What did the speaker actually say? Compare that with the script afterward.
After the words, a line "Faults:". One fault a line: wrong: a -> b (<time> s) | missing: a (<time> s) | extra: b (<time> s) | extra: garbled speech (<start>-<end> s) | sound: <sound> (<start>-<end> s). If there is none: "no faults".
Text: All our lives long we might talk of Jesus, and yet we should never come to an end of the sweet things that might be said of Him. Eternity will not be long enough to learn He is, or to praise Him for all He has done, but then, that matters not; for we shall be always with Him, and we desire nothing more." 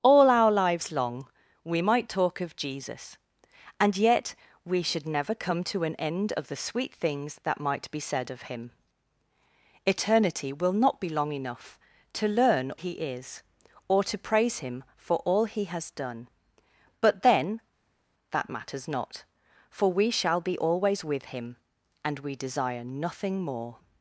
All our lives long we might talk of Jesus, and yet we should never come to an end of the sweet things that might be said of Him. Eternity will not be long enough to learn He is, or to praise Him for all He has done, but then, that matters not; for we shall be always with Him, and we desire nothing more."
Faults:
no faults